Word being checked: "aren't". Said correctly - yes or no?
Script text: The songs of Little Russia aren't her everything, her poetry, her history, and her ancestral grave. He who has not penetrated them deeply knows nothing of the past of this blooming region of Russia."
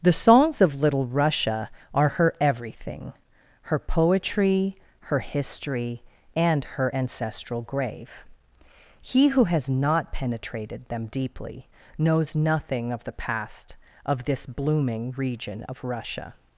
no